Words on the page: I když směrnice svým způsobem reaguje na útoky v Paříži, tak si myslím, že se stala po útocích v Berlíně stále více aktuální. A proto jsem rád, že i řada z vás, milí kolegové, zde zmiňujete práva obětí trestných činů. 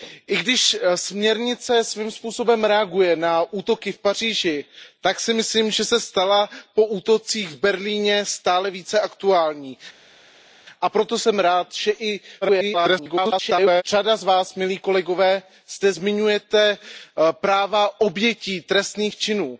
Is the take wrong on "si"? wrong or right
right